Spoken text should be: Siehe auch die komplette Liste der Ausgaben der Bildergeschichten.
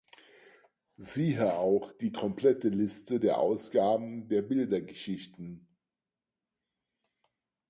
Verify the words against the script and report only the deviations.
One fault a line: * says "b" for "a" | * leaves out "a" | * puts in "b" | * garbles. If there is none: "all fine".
all fine